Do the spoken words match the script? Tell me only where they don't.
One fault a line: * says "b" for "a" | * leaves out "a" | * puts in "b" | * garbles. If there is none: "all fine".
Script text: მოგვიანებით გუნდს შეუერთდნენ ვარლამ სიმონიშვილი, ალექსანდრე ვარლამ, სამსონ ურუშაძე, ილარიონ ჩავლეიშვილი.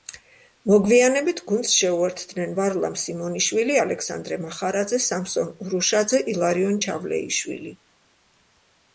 * says "მახარაძე" for "ვარლამ"